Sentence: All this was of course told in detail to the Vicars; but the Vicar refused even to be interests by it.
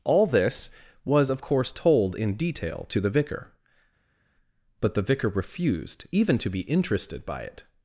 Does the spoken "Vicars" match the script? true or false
false